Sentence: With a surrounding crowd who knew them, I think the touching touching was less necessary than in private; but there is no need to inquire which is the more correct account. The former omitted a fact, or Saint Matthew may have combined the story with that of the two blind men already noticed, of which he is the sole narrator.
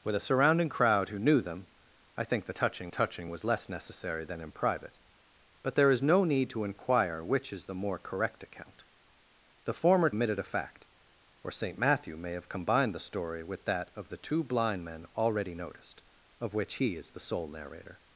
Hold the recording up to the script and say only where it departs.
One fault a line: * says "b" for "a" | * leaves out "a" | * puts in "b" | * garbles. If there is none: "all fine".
all fine